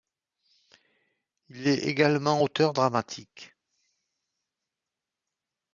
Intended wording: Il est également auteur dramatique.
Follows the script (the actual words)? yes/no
yes